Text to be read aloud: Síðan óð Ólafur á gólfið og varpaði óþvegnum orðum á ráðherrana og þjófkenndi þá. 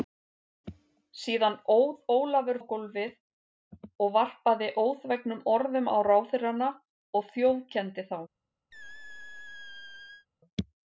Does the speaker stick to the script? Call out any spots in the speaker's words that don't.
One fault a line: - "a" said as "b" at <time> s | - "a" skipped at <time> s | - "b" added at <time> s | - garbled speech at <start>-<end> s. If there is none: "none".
none